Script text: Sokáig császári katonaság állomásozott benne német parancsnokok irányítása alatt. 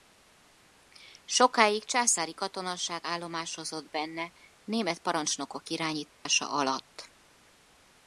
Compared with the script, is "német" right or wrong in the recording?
right